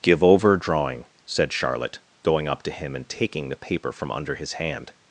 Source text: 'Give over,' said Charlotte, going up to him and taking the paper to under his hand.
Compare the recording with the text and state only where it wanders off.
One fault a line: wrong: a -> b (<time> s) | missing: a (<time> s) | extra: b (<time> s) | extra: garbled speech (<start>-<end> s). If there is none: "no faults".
extra: drawing (0.6 s)
wrong: to -> from (3.9 s)